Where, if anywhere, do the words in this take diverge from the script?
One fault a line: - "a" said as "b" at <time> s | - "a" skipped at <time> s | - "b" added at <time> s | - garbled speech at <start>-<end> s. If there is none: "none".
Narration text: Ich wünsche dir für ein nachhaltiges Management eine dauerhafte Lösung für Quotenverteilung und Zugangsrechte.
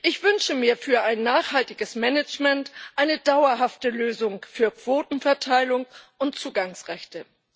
- "dir" said as "mir" at 0.6 s